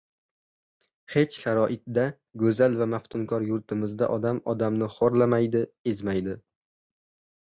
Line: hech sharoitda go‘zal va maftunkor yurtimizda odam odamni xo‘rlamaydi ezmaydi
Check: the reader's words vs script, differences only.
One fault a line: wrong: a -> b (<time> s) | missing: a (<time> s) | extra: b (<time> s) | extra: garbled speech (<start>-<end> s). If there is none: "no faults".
no faults